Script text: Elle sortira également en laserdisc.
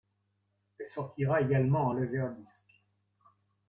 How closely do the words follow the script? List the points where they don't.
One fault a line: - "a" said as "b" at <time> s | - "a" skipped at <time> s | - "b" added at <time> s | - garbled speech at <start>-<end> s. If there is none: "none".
none